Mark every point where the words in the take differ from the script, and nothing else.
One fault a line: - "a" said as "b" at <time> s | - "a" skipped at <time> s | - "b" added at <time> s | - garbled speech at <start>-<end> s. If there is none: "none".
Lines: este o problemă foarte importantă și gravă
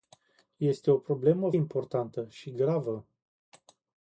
- "foarte" skipped at 1.5 s